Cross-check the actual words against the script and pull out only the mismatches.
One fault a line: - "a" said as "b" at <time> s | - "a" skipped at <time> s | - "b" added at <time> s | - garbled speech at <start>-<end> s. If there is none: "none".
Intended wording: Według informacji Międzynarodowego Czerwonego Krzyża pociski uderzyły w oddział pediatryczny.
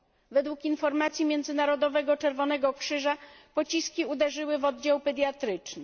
none